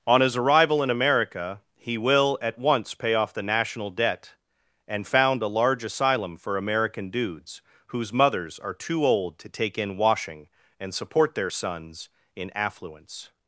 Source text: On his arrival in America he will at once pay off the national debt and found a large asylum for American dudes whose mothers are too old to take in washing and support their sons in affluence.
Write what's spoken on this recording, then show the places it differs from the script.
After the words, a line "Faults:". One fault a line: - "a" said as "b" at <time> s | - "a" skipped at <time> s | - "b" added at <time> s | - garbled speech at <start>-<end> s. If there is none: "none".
On his arrival in America he will at once pay off the national debt and found a large asylum for American dudes whose mothers are too old to take in washing and support their sons in affluence.
Faults:
none